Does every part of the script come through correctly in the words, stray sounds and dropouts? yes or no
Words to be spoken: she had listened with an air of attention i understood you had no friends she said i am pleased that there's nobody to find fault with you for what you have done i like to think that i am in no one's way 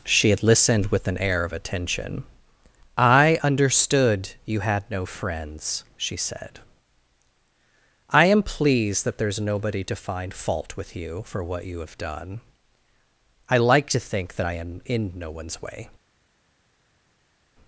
yes